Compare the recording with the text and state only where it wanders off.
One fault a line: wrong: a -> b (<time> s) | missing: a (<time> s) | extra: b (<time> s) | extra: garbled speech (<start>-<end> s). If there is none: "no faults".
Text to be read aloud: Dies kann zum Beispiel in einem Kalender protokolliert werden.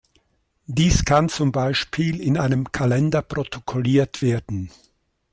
no faults